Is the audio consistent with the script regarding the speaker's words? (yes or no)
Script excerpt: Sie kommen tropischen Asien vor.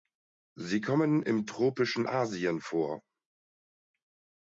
no